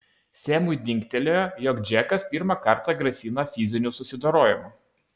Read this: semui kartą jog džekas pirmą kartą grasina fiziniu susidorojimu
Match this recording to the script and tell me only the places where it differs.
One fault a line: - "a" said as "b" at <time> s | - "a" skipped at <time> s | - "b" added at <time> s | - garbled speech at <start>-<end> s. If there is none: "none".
- "kartą" said as "dingtelėjo" at 0.9 s